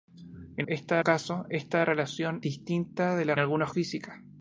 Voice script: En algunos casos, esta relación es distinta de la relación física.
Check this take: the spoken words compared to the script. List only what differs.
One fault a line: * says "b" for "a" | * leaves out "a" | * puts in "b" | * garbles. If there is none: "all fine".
* says "esta" for "algunos"
* leaves out "es"
* says "algunos" for "relación"